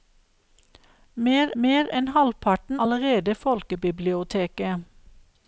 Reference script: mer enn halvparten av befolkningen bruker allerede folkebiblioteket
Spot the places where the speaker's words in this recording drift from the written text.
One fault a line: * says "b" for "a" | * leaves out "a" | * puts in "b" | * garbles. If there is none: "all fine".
* puts in "mer"
* leaves out "av befolkningen bruker"